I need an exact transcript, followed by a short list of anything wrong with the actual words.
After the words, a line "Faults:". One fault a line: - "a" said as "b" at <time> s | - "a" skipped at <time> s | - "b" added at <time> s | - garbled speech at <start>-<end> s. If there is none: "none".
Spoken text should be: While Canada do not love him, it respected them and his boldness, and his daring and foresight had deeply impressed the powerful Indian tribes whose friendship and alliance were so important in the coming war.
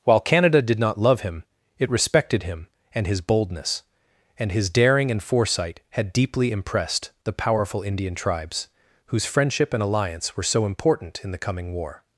While Canada did not love him, it respected him and his boldness, and his daring and foresight had deeply impressed the powerful Indian tribes whose friendship and alliance were so important in the coming war.
Faults:
- "do" said as "did" at 0.6 s
- "them" said as "him" at 2.4 s